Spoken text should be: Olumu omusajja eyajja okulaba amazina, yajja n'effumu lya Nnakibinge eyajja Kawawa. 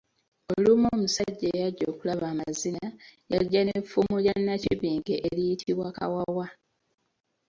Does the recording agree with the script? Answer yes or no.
no